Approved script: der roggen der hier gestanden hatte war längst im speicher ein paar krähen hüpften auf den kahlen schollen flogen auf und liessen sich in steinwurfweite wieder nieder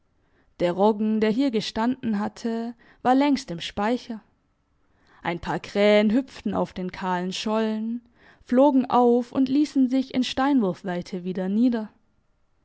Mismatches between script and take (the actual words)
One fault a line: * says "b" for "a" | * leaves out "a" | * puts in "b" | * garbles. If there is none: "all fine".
all fine